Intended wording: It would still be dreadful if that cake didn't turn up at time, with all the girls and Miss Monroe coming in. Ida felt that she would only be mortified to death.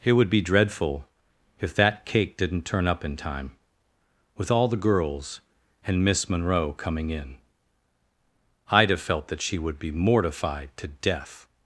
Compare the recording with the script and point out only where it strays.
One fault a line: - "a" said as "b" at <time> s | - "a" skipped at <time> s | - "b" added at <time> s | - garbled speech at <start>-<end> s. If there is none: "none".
- "still" skipped at 0.3 s
- "at" said as "in" at 3.0 s
- "only" skipped at 9.8 s